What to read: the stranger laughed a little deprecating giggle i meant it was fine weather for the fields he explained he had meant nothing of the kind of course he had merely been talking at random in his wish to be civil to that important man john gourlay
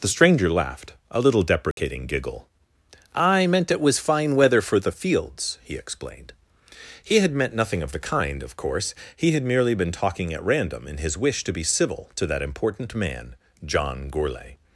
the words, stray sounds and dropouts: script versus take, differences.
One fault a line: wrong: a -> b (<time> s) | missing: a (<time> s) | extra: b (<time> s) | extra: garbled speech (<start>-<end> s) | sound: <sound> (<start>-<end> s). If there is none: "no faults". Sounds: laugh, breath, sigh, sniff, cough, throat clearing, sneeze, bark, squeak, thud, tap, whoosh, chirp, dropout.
sound: dropout (1.7-1.8 s)